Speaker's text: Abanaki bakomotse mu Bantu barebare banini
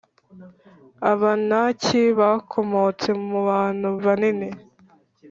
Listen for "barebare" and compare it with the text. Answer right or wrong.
wrong